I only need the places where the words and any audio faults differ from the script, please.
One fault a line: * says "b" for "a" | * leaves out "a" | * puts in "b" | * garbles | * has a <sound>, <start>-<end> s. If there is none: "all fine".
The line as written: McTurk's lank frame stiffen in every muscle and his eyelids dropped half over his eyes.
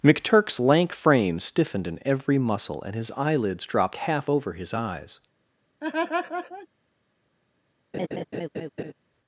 * says "stiffened" for "stiffen"
* has a laugh, 5.8-6.7 s
* has a laugh, 7.9-8.9 s